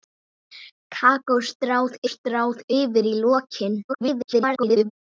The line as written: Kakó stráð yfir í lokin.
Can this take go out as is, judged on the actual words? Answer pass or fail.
fail